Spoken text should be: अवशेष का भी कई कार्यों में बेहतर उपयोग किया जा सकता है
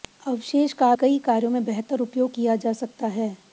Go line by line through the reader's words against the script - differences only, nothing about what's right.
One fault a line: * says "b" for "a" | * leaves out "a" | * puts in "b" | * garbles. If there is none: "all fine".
* leaves out "भी"